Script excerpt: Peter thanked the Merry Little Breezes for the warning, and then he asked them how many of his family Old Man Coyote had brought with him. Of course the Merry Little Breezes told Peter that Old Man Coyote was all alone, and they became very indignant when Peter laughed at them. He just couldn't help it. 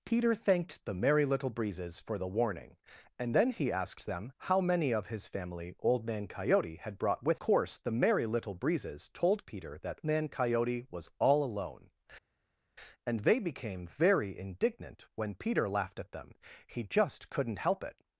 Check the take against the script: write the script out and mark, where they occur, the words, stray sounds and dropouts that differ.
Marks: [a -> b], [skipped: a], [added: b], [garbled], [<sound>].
Peter thanked the Merry Little Breezes for the warning, and then he asked them how many of his family Old Man Coyote had brought with [skipped: him. Of] course the Merry Little Breezes told Peter that [skipped: Old] Man Coyote was all alone, and they became very indignant when Peter laughed at them. He just couldn't help it.